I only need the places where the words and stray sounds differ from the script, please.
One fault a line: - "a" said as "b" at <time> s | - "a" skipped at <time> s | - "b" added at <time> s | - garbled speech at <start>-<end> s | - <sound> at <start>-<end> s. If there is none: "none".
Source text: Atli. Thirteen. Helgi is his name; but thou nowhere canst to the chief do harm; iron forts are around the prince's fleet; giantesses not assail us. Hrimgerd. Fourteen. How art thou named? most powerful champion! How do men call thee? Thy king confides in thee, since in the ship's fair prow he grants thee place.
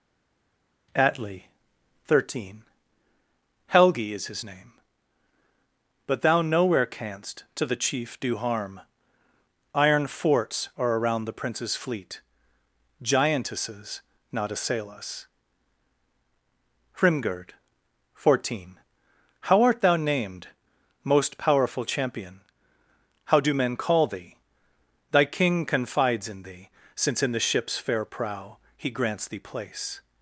none